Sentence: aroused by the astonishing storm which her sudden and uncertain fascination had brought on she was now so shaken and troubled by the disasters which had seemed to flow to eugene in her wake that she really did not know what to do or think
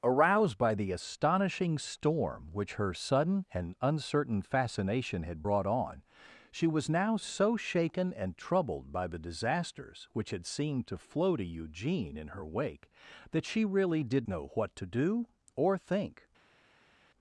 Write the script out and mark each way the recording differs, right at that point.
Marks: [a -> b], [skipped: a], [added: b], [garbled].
aroused by the astonishing storm which her sudden and uncertain fascination had brought on she was now so shaken and troubled by the disasters which had seemed to flow to eugene in her wake that she really did [skipped: not] know what to do or think